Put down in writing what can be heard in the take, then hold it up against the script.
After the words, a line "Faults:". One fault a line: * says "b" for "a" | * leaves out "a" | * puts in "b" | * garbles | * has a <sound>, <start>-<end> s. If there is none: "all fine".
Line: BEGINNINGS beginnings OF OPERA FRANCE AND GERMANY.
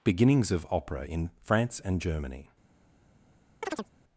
BEGINNINGS OF OPERA IN FRANCE AND GERMANY.
Faults:
* leaves out "beginnings"
* puts in "IN"
* has a chirp, 3.6-3.9 s